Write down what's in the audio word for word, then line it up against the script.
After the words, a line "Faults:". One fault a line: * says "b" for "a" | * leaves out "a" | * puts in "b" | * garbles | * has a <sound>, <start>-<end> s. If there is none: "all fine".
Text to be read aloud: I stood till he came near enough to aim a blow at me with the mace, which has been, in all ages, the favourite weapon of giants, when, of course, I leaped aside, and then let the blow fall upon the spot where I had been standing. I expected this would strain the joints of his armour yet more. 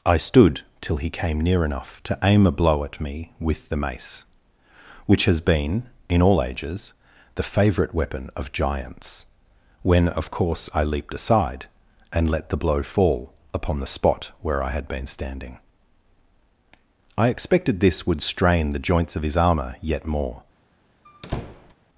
I stood till he came near enough to aim a blow at me with the mace, which has been, in all ages, the favourite weapon of giants, when, of course, I leaped aside, and let the blow fall upon the spot where I had been standing. I expected this would strain the joints of his armour yet more.
Faults:
* leaves out "then"
* has a squeak, 21.0-21.7 s